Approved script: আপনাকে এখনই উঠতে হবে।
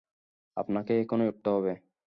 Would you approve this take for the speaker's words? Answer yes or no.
yes